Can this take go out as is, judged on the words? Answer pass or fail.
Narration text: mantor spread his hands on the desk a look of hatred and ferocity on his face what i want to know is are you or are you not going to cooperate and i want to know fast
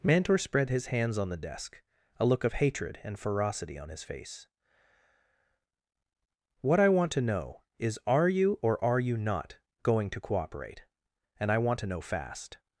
pass